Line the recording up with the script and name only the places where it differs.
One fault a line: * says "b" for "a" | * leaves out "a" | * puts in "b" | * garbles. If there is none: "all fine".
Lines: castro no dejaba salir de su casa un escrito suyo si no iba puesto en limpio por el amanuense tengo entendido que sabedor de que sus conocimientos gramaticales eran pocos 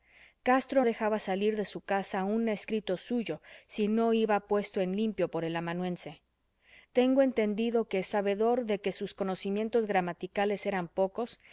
* leaves out "no"